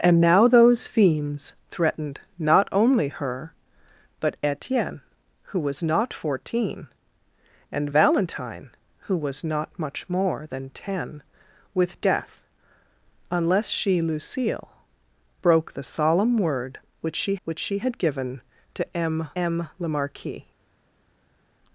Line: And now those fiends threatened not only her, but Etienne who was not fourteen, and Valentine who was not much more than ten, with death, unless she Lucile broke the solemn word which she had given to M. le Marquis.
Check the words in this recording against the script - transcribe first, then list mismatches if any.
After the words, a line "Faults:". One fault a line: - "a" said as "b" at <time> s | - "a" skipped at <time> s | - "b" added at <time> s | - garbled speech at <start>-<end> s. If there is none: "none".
And now those fiends threatened not only her, but Etienne who was not fourteen, and Valentine who was not much more than ten, with death, unless she Lucile broke the solemn word which she which she had given to M M. le Marquis.
Faults:
- "which she" added at 17.4 s
- "M" added at 19.4 s